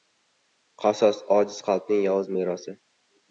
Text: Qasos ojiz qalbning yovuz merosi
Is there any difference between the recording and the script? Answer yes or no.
no